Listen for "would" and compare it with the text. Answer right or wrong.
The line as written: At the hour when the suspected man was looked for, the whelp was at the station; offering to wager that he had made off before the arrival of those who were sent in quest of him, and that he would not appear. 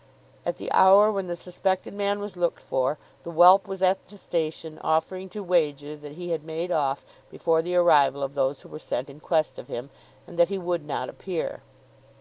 right